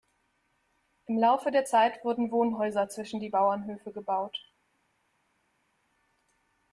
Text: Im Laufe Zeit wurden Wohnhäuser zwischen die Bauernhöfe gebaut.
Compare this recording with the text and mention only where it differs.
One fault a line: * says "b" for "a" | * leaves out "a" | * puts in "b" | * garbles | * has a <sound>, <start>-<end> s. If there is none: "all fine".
* puts in "der"